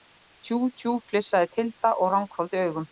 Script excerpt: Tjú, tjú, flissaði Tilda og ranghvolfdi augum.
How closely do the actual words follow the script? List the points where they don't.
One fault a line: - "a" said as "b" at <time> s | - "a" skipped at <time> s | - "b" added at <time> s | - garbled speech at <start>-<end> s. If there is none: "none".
none